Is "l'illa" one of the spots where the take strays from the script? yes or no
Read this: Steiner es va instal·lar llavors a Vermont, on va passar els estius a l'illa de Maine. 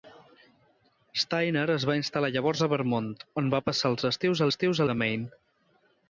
yes